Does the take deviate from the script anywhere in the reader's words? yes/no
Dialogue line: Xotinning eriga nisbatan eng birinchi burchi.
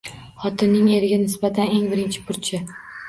no